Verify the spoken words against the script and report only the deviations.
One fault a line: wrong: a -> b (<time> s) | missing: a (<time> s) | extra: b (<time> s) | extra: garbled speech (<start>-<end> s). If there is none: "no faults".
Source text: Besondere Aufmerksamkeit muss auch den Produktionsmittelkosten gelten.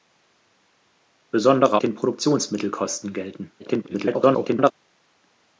missing: Aufmerksamkeit muss auch (1.8 s)
extra: garbled speech (3.6-4.7 s)